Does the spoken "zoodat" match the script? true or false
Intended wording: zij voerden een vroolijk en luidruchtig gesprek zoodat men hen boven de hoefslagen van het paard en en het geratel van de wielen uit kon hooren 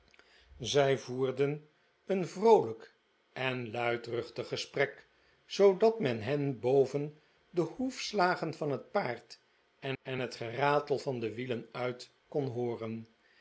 true